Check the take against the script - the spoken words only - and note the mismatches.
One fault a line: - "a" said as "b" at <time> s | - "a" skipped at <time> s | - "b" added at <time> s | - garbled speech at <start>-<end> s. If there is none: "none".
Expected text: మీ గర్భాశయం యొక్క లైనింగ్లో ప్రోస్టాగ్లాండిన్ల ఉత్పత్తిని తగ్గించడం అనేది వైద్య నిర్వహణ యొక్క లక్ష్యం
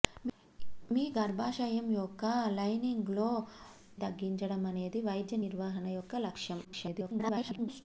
- "ప్రోస్టాగ్లాండిన్ల ఉత్పత్తిని" skipped at 3.3 s
- garbled speech at 6.6-7.8 s